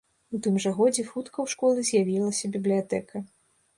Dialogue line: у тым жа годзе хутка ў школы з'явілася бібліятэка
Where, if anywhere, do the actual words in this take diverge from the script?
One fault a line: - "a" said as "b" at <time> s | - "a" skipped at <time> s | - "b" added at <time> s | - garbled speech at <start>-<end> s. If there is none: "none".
none